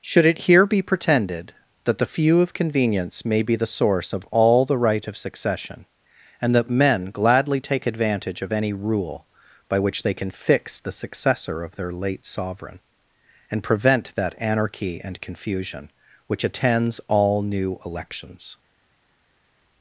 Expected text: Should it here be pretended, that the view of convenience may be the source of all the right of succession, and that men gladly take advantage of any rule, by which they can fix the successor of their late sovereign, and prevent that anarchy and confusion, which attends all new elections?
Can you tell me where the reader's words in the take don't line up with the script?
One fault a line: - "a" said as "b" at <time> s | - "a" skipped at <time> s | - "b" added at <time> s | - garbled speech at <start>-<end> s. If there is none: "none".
- "view" said as "few" at 2.1 s